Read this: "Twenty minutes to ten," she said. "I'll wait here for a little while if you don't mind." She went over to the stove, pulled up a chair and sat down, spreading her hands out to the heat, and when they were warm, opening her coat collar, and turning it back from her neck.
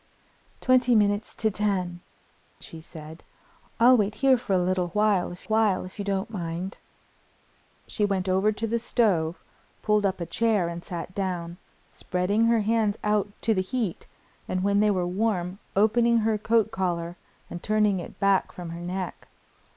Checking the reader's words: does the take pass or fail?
fail